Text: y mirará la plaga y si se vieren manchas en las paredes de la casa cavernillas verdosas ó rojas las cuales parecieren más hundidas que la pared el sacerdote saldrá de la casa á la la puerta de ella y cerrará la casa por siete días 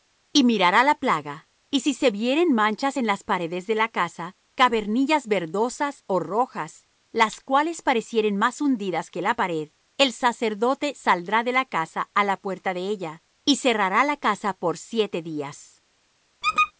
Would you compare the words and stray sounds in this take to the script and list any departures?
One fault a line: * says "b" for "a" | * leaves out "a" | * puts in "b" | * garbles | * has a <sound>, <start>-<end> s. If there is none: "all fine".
* leaves out "la"
* has a squeak, 16.4-16.7 s